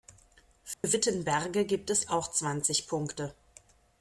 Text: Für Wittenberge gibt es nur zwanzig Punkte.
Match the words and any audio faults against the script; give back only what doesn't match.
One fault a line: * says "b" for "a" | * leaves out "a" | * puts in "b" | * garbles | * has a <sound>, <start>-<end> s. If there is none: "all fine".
* has a dropout, 0.7-0.8 s
* says "auch" for "nur"